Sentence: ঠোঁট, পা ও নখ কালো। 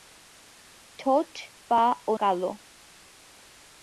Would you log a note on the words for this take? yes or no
yes